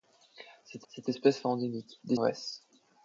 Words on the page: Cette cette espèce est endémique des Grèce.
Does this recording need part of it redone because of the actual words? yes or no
no